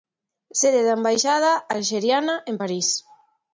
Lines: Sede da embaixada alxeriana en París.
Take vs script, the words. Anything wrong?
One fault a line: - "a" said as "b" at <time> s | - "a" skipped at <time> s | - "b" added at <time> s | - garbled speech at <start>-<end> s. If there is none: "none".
none